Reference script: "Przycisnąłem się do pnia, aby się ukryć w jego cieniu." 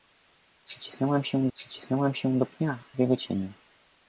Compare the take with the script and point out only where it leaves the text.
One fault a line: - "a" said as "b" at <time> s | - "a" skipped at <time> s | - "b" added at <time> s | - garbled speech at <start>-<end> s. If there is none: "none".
- "przycisnąłem się" added at 1.5 s
- "aby się ukryć" skipped at 2.8 s